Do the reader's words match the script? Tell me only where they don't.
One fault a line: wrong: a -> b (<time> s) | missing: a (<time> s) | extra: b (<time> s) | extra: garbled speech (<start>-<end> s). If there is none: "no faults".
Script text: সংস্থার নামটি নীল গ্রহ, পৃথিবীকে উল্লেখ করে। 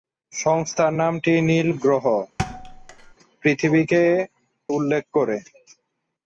no faults